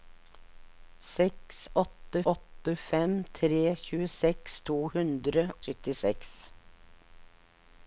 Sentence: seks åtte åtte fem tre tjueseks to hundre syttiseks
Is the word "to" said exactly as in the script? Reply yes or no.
yes